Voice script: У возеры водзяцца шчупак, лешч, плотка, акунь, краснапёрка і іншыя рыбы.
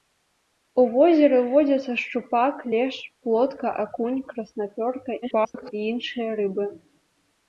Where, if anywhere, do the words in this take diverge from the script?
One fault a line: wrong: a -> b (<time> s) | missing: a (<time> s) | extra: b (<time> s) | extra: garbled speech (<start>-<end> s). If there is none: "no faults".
extra: garbled speech (5.2-5.7 s)